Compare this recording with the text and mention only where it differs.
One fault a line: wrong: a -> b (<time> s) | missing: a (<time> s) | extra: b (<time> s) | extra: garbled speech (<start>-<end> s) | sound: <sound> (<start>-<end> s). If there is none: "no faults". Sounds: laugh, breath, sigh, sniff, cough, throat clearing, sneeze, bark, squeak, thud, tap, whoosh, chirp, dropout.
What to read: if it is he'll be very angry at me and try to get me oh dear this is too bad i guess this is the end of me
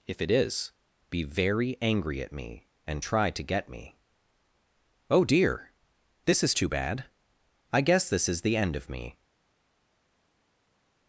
missing: he'll (0.7 s)